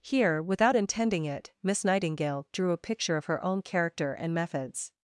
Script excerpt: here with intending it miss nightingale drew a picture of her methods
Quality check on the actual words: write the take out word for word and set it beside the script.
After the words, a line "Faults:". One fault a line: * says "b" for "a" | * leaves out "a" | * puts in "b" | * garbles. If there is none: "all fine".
here without intending it miss nightingale drew a picture of her own character and methods
Faults:
* says "without" for "with"
* puts in "own character and"